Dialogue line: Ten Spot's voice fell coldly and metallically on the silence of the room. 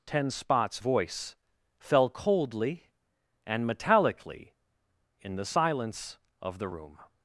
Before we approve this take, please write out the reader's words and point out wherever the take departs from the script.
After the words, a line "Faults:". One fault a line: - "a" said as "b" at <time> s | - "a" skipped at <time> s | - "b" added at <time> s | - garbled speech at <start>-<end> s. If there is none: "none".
Ten Spot's voice fell coldly and metallically in the silence of the room.
Faults:
- "on" said as "in" at 5.2 s